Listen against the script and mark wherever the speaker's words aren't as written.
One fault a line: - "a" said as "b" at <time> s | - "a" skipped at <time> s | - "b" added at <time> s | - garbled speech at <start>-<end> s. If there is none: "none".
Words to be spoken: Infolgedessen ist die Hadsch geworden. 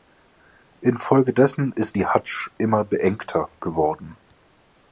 - "immer beengter" added at 2.6 s